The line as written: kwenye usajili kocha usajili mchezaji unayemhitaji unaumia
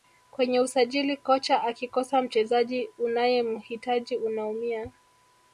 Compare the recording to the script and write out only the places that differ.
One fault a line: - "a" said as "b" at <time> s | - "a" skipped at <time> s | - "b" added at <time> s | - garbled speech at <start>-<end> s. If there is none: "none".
- "usajili" said as "akikosa" at 1.6 s